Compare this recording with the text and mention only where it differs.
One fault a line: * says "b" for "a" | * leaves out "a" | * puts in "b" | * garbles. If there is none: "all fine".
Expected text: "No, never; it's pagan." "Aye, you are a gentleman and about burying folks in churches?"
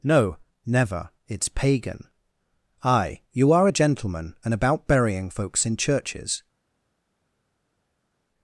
all fine